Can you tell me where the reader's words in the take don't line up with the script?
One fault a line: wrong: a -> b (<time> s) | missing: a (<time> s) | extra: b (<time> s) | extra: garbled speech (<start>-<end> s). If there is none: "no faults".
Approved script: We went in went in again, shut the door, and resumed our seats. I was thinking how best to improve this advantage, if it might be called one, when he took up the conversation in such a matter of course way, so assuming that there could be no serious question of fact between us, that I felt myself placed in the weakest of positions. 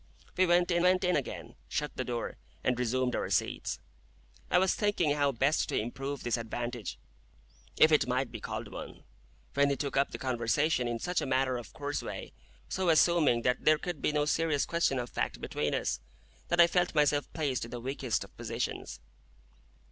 no faults